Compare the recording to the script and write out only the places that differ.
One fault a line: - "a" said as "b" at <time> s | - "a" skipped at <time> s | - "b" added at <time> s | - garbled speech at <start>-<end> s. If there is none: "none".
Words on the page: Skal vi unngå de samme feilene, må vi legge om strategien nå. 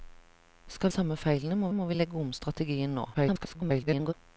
- "vi unngå de" skipped at 0.9 s
- "må" added at 1.7 s
- garbled speech at 3.1-4.1 s